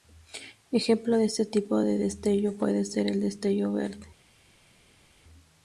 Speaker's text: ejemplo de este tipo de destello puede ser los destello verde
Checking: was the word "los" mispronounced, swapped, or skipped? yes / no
yes